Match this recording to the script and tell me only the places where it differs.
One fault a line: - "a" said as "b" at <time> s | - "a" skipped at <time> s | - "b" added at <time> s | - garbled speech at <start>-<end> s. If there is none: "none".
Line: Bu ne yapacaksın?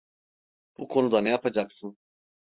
- "konuda" added at 0.9 s